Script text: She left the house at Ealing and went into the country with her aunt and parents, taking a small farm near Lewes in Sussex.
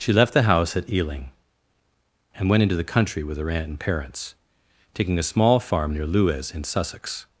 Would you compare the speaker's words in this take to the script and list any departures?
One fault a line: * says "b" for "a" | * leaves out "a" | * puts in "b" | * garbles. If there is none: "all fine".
all fine